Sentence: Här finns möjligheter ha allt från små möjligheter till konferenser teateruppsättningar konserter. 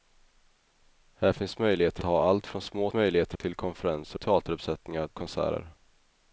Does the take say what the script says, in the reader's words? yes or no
yes